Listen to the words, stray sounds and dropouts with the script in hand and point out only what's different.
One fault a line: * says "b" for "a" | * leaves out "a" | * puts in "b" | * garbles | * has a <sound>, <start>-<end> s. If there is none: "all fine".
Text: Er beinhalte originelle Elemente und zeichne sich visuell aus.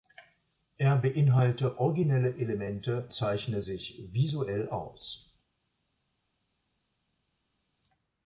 * leaves out "und"